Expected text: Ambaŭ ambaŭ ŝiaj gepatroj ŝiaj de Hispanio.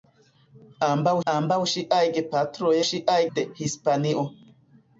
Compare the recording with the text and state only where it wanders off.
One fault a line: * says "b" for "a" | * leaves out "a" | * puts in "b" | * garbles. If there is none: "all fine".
all fine